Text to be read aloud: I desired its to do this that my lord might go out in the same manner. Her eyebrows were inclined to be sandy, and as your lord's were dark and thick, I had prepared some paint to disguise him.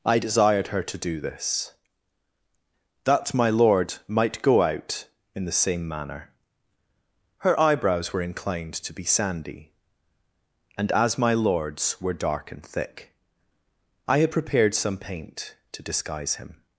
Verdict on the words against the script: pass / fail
fail